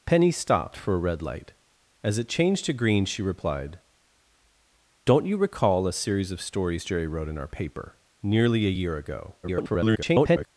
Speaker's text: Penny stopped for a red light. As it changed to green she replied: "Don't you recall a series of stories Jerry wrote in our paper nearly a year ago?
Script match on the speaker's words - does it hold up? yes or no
no